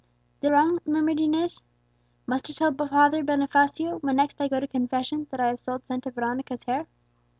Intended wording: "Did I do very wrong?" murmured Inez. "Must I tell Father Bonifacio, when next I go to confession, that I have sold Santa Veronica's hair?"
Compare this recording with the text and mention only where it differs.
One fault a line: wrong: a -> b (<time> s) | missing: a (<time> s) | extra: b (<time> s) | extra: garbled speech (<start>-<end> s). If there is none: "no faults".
missing: I do very (0.5 s)